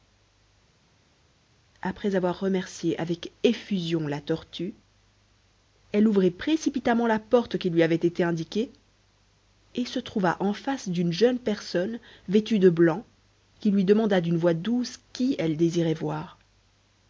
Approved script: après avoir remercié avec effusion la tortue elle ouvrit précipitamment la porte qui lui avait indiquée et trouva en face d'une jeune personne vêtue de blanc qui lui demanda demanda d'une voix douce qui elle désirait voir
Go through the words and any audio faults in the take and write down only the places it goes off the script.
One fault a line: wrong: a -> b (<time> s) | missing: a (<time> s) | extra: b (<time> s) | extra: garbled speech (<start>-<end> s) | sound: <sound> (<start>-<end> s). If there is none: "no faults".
extra: été (7.9 s)
extra: se (9.9 s)
missing: demanda (14.2 s)